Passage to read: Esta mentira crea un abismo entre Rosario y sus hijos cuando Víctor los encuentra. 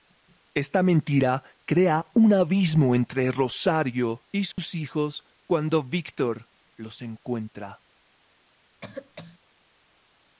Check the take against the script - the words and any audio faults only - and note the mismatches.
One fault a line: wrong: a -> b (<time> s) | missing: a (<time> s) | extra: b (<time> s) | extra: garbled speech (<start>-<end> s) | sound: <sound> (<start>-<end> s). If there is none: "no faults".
sound: dropout (4.5-4.6 s)
sound: cough (8.8-9.4 s)